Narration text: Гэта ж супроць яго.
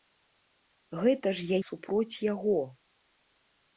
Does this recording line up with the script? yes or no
yes